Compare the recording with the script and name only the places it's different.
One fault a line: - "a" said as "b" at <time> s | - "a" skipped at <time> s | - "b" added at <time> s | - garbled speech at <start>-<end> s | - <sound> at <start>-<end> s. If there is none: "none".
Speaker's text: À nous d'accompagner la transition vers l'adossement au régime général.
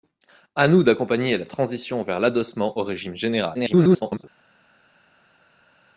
- garbled speech at 3.5-4.2 s